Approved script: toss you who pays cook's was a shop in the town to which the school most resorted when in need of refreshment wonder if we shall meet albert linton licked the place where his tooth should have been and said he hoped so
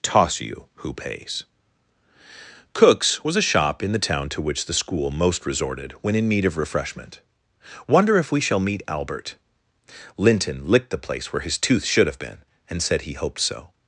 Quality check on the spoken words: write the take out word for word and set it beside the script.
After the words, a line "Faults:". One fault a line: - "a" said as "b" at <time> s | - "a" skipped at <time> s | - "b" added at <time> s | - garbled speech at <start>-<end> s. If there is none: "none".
toss you who pays cook's was a shop in the town to which the school most resorted when in need of refreshment wonder if we shall meet albert linton licked the place where his tooth should have been and said he hoped so
Faults:
none